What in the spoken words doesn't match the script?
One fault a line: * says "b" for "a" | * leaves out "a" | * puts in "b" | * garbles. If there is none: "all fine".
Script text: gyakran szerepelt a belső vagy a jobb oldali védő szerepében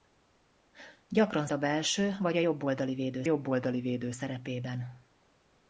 * leaves out "szerepelt"
* puts in "jobb oldali védő"